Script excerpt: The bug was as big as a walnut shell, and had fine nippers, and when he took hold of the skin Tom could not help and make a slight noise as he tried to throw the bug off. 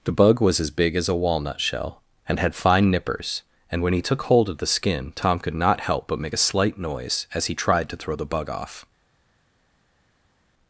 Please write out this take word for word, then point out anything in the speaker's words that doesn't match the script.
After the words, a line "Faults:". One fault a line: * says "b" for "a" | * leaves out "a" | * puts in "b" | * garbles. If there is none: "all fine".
The bug was as big as a walnut shell, and had fine nippers, and when he took hold of the skin Tom could not help but make a slight noise as he tried to throw the bug off.
Faults:
* says "but" for "and"